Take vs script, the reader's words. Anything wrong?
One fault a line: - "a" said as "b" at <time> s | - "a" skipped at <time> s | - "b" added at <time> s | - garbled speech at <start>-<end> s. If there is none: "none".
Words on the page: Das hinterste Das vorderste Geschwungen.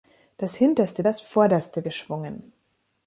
none